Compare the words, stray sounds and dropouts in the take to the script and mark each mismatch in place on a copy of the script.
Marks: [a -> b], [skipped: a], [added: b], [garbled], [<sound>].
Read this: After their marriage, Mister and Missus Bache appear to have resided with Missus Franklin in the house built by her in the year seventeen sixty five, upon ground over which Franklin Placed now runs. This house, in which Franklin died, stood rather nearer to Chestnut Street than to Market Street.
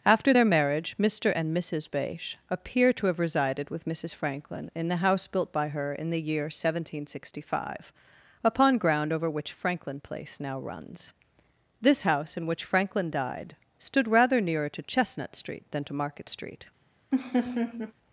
After their marriage, Mister and Missus Bache appear to have resided with Missus Franklin in the house built by her in the year seventeen sixty five, upon ground over which Franklin [Placed -> Place] now runs. This house, in which Franklin died, stood rather nearer to Chestnut Street than to Market Street. [laugh]